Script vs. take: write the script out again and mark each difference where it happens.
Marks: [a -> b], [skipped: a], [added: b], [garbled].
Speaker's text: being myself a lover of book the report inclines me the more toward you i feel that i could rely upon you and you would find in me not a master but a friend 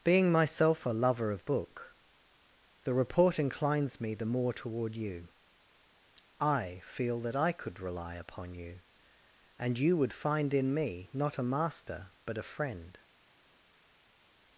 being myself a lover of book the report inclines me the more toward you i feel that i could rely upon you and you would find in me not a master but a friend